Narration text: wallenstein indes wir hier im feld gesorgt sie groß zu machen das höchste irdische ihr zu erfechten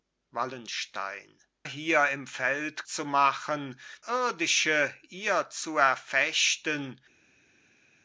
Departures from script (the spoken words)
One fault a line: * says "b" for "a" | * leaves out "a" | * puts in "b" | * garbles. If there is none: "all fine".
* leaves out "indes wir"
* leaves out "gesorgt sie groß"
* leaves out "das höchste"